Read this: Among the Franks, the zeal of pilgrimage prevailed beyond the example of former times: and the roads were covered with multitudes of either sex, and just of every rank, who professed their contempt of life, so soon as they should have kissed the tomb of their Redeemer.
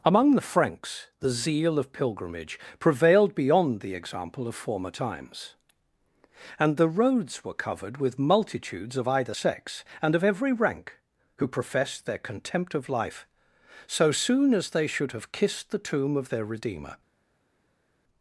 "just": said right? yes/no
no